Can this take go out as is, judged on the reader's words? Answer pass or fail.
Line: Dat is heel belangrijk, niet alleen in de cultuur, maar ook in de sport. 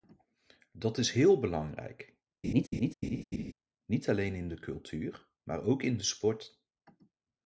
pass